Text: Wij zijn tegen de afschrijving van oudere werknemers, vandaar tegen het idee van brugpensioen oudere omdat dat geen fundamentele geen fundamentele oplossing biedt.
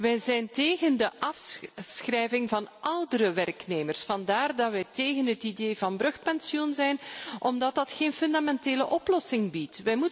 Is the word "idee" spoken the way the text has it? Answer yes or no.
yes